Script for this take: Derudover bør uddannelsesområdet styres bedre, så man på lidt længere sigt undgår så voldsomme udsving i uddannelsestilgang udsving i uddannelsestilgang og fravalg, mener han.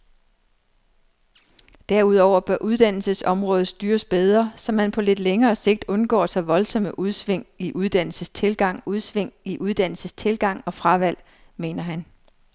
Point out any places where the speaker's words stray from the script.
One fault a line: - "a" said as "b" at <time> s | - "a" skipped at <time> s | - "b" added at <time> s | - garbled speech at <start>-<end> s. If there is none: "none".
none